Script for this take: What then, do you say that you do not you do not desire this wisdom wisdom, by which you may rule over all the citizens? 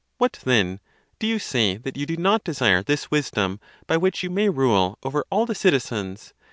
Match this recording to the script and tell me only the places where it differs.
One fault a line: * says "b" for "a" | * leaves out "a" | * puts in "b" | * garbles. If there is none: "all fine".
* leaves out "you do not"
* leaves out "wisdom"